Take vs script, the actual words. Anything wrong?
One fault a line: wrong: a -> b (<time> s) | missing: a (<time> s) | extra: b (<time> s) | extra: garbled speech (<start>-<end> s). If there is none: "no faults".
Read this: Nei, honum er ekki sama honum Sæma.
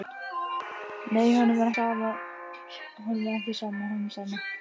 missing: ekki (1.7 s)